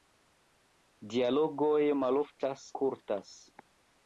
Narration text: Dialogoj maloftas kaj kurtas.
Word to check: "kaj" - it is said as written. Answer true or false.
false